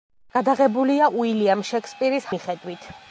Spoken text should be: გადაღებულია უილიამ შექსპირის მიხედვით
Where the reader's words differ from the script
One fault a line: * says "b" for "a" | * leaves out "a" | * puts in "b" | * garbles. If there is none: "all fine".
all fine